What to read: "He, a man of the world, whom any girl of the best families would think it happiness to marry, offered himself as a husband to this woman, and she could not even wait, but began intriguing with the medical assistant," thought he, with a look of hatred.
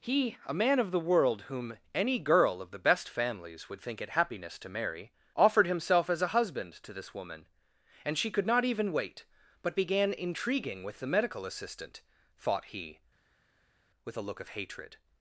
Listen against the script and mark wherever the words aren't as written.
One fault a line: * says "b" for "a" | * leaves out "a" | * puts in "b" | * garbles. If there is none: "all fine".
all fine